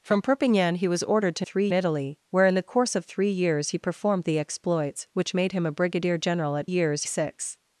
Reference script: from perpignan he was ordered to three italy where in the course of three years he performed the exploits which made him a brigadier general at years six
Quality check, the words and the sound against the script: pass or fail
pass